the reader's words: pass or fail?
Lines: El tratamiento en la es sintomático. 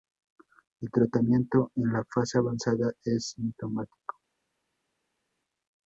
fail